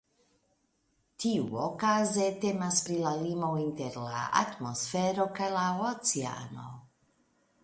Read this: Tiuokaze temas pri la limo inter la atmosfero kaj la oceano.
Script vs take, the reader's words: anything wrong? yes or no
no